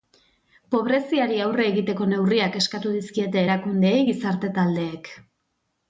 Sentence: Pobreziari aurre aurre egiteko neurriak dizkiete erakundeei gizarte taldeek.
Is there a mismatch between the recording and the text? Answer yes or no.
yes